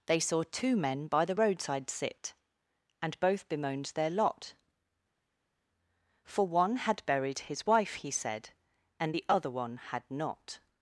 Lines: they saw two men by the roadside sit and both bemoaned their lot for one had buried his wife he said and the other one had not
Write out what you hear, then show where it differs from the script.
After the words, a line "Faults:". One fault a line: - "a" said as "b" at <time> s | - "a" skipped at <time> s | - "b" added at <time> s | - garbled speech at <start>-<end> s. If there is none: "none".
they saw two men by the roadside sit and both bemoaned their lot for one had buried his wife he said and the other one had not
Faults:
none